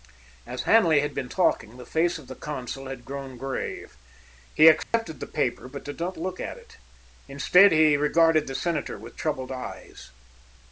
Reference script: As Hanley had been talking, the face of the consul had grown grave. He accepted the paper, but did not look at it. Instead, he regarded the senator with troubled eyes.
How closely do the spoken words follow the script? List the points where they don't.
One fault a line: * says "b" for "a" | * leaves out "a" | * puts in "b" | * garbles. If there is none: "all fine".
all fine